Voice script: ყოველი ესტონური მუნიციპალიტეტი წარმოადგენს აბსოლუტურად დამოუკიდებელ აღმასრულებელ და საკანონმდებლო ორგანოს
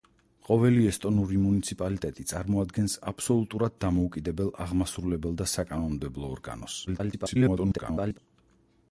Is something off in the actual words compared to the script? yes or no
yes